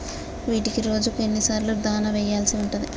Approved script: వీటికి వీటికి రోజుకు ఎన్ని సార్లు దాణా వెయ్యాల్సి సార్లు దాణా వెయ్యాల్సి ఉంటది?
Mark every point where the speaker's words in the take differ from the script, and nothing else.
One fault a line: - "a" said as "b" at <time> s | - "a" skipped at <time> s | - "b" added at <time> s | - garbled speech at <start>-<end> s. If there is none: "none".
- "వీటికి" skipped at 0.8 s
- "సార్లు దాణా వెయ్యాల్సి" skipped at 2.6 s